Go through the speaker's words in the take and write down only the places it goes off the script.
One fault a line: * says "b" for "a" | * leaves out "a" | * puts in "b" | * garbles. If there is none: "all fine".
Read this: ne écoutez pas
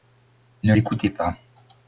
all fine